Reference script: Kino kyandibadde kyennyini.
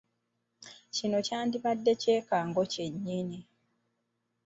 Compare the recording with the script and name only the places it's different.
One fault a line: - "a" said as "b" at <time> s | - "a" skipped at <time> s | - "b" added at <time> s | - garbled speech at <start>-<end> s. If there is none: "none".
- "kyekango" added at 2.0 s